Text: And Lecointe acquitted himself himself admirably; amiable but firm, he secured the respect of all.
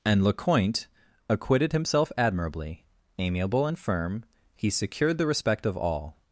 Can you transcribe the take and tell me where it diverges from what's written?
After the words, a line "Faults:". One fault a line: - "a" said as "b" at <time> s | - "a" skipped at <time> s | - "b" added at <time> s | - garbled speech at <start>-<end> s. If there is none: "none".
And Lecointe acquitted himself admirably; amiable and firm, he secured the respect of all.
Faults:
- "himself" skipped at 2.1 s
- "but" said as "and" at 3.7 s